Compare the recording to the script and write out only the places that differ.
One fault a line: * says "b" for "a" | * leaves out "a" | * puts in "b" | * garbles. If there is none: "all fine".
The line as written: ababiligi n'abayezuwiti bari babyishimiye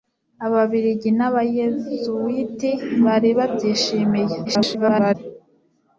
* garbles